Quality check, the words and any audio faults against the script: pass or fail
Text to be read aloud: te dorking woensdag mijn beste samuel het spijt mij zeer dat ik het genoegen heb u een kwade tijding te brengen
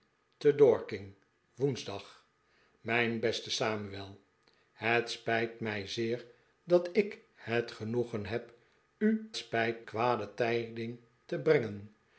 fail